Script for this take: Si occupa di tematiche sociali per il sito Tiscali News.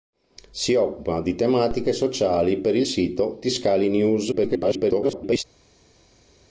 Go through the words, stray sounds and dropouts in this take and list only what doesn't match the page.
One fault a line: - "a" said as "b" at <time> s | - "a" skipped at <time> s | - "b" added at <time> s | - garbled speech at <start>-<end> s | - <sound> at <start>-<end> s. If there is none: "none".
- garbled speech at 4.3-5.4 s